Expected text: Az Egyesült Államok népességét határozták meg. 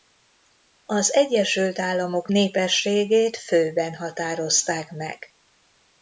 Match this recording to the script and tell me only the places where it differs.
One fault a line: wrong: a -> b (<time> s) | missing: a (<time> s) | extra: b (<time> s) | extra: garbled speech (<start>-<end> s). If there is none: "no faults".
extra: főben (3.4 s)